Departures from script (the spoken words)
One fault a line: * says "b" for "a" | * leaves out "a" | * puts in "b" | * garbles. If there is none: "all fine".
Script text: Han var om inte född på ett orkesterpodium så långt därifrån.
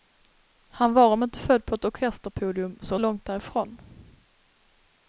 all fine